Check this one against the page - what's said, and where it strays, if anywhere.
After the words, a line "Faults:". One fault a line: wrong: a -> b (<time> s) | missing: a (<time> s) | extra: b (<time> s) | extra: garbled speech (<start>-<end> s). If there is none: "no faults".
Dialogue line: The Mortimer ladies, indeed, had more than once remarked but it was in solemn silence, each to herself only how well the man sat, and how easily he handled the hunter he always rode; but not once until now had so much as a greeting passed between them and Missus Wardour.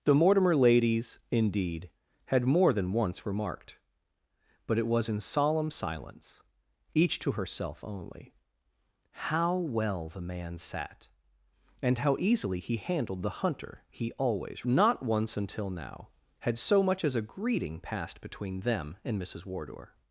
The Mortimer ladies, indeed, had more than once remarked but it was in solemn silence, each to herself only how well the man sat, and how easily he handled the hunter he always not once until now had so much as a greeting passed between them and Missus Wardour.
Faults:
missing: rode but (14.7 s)